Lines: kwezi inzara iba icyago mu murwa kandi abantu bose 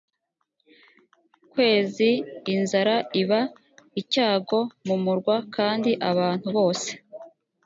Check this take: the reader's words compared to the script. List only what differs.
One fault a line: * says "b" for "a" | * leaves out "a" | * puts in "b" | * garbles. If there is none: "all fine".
all fine